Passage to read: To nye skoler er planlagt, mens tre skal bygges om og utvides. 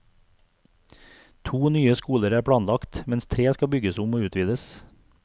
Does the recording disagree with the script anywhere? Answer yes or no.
no